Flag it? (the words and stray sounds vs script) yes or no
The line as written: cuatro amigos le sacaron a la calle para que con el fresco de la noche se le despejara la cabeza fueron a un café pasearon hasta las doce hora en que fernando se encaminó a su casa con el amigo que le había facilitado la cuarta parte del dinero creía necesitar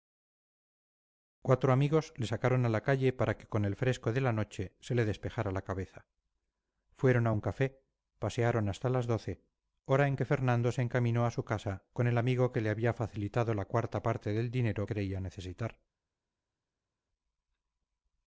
no